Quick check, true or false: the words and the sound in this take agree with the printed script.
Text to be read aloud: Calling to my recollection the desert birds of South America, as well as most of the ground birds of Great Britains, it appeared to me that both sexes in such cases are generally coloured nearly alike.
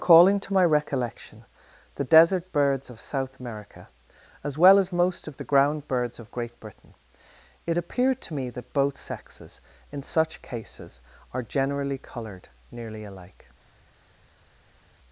false